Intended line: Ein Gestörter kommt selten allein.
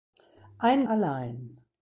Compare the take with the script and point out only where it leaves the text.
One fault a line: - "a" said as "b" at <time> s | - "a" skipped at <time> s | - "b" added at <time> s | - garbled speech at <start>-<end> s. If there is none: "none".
- "Gestörter kommt selten" skipped at 0.9 s